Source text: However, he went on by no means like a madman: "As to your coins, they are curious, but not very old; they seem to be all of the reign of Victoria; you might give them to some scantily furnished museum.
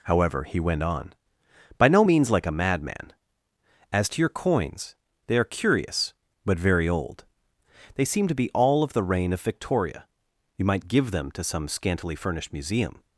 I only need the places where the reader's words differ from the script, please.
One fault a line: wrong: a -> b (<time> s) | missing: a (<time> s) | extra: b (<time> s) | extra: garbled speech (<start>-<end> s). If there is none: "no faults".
missing: not (6.6 s)